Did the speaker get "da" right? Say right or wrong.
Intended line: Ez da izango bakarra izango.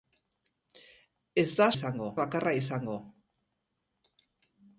right